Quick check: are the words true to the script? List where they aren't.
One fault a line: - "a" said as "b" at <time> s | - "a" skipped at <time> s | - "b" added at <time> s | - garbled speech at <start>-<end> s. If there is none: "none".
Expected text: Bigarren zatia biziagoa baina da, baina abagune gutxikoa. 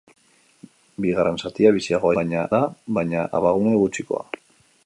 none